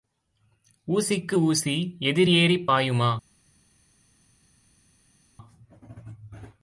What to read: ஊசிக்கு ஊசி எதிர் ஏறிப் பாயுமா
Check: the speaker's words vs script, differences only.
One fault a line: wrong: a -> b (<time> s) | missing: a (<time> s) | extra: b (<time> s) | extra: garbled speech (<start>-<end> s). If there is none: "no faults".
no faults